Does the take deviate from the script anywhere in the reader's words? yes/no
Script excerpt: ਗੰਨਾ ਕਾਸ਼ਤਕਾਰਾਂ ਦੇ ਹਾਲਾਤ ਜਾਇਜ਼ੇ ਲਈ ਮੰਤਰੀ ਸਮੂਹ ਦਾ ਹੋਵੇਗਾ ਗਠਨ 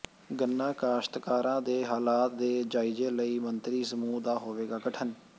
yes